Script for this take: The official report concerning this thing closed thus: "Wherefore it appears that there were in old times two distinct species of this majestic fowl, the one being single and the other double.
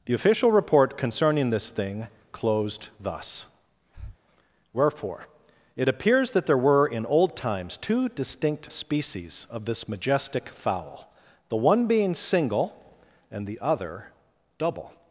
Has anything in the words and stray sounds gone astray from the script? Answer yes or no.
yes